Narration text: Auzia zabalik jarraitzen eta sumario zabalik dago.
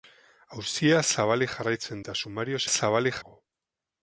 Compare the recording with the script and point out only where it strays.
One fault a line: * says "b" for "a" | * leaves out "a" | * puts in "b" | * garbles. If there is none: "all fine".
all fine